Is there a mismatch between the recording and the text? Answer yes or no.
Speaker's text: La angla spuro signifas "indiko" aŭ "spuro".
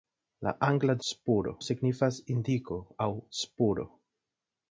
no